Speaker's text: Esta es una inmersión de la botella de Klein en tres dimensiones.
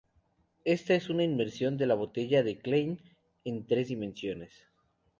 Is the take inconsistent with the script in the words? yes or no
no